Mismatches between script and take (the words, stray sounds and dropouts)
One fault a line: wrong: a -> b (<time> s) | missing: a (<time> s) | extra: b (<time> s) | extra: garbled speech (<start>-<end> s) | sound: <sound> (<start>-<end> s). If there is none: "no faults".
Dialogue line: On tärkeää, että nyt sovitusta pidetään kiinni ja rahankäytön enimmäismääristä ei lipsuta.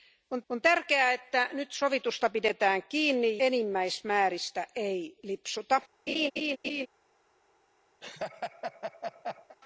extra: on (0.5 s)
missing: ja rahankäytön (3.4 s)
sound: laugh (6.1-6.9 s)
sound: laugh (8.0-9.6 s)